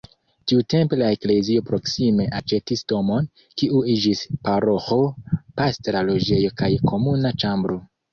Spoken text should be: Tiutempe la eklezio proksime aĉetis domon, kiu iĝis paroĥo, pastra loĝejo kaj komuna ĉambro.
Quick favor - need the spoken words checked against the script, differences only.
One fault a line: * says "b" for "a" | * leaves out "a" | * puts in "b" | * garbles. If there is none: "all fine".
all fine